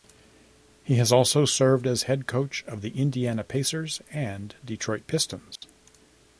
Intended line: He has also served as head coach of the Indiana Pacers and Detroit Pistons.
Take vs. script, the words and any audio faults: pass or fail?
fail